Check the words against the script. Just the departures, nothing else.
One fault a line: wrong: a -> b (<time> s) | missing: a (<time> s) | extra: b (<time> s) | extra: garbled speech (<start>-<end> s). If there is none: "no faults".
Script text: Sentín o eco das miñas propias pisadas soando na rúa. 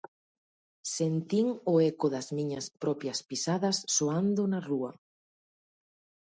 no faults